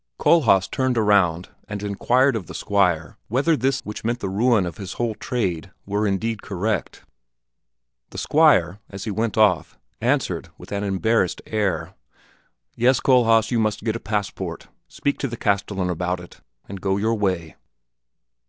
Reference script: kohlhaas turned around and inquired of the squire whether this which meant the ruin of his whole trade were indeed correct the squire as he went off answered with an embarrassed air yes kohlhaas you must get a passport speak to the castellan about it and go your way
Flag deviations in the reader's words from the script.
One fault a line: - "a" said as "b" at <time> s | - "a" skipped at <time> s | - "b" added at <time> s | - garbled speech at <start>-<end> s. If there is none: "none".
none